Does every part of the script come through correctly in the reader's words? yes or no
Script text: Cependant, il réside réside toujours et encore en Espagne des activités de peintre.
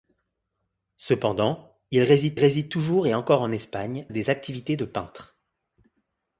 yes